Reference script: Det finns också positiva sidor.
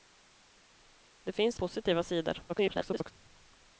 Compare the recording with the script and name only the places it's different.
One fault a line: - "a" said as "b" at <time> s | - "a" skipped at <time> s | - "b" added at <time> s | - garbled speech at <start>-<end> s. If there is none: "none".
- "också" skipped at 1.6 s
- garbled speech at 2.5-3.1 s